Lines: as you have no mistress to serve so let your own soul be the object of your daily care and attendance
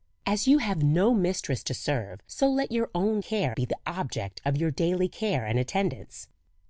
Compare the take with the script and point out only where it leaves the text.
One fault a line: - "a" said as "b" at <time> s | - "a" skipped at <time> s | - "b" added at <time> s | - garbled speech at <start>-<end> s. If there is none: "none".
- "soul" said as "care" at 3.2 s